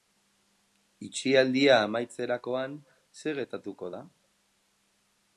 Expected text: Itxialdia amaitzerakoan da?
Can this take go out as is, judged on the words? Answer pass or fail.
fail